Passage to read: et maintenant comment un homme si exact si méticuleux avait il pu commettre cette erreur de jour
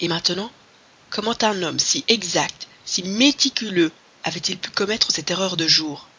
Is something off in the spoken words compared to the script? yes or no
no